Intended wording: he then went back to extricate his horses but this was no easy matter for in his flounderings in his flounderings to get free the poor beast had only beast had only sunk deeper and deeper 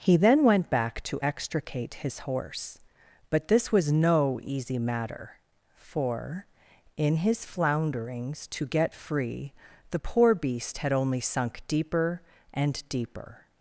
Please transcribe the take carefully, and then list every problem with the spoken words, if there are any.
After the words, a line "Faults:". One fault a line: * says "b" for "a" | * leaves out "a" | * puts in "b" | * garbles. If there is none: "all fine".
he then went back to extricate his horse but this was no easy matter for in his flounderings to get free the poor beast had only sunk deeper and deeper
Faults:
* says "horse" for "horses"
* leaves out "in his flounderings"
* leaves out "beast had only"